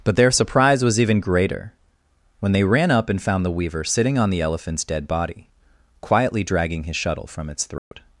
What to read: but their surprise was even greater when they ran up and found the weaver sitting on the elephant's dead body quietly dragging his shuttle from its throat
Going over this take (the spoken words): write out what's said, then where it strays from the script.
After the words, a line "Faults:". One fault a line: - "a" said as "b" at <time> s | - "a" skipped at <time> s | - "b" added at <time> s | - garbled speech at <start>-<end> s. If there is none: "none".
but their surprise was even greater when they ran up and found the weaver sitting on the elephant's dead body quietly dragging his shuttle from its throat
Faults:
none